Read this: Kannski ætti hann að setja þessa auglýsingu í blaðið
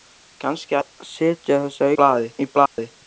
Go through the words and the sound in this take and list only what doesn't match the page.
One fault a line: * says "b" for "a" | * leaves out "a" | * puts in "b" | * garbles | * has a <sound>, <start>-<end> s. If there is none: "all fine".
* leaves out "ætti hann"
* says "blaðið" for "auglýsingu"
* has a dropout, 2.7-2.8 s